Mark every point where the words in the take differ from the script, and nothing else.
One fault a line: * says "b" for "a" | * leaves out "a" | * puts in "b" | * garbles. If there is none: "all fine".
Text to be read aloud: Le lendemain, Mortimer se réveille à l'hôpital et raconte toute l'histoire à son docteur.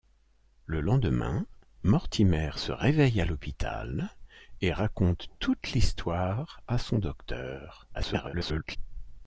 * garbles